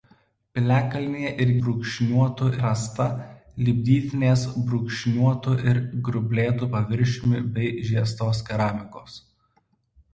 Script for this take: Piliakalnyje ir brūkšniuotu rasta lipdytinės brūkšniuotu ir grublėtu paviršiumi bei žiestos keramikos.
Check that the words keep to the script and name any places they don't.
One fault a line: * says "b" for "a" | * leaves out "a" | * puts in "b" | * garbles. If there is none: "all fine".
all fine